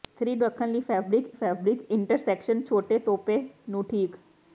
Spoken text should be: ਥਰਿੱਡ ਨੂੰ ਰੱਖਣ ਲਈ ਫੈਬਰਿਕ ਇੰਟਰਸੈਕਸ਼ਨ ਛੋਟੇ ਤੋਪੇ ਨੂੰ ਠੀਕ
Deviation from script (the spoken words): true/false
true